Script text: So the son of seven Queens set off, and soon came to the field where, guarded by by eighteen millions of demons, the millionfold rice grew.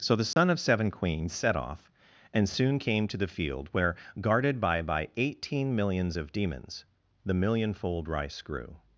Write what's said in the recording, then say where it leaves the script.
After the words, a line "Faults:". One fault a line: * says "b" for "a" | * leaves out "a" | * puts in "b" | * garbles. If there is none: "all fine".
So the son of seven Queens set off, and soon came to the field where, guarded by by eighteen millions of demons, the millionfold rice grew.
Faults:
all fine